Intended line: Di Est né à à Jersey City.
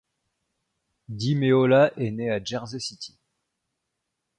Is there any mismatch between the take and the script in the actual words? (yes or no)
yes